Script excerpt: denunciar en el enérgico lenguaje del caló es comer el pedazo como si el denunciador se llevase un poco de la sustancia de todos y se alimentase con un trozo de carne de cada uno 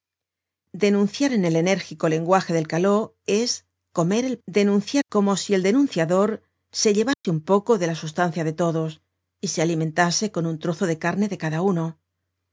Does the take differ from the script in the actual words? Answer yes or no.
yes